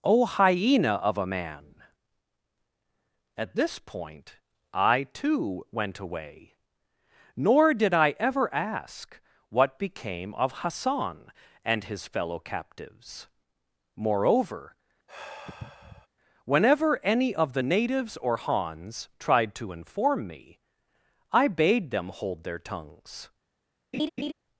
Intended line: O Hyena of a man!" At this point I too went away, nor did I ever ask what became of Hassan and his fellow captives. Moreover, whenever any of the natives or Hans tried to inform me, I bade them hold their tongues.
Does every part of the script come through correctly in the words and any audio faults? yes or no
no